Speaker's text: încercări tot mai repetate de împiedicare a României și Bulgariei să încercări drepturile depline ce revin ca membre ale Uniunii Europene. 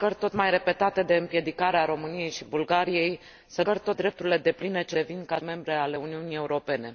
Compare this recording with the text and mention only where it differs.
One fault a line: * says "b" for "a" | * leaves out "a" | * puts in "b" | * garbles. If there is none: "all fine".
all fine